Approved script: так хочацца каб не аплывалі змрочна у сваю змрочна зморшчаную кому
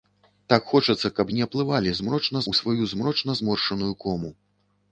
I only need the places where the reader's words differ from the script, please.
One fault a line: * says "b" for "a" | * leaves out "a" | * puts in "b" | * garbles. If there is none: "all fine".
all fine